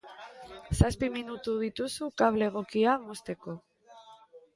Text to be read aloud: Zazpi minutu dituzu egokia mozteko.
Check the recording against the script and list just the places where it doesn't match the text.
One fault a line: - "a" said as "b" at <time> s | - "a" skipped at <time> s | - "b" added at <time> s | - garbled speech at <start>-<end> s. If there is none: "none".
- "kable" added at 2.2 s